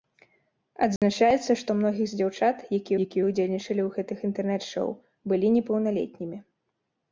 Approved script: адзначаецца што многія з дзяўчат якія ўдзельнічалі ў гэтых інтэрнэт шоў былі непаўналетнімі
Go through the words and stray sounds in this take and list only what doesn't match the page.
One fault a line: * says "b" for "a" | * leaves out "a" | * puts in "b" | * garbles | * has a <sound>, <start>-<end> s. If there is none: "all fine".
* has a dropout, 1.0-1.0 s
* puts in "якія"